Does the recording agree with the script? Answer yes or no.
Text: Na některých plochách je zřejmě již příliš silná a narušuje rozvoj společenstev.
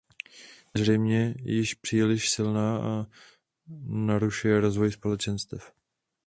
no